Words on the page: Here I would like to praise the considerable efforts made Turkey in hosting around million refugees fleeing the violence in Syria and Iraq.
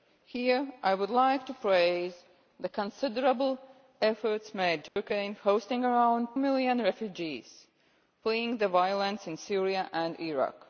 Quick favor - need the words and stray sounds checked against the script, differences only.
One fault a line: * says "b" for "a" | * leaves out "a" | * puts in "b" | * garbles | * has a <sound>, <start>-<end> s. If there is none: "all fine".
* has a dropout, 4.9-5.0 s